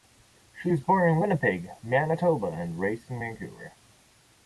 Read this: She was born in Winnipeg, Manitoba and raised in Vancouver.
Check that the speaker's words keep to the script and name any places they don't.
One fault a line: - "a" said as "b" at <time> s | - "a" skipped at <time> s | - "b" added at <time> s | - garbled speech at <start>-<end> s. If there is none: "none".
none